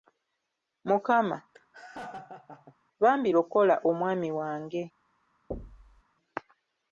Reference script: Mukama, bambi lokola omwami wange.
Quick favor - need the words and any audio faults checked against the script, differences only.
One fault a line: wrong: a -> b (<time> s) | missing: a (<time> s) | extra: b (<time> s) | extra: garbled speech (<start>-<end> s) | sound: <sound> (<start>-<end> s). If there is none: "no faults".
sound: laugh (1.5-2.8 s)
sound: thud (5.5-6.0 s)